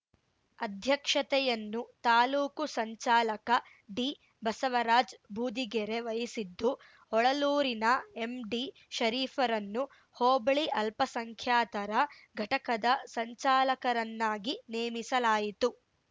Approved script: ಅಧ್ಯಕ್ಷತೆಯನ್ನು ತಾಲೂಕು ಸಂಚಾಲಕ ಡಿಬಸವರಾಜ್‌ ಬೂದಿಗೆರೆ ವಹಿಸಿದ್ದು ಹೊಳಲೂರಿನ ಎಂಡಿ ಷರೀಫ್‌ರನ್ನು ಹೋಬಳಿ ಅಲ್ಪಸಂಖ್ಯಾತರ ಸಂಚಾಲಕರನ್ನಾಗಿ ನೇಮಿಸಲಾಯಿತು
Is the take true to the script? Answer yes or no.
no